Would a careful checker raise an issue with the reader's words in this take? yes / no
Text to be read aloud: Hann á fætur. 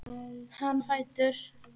no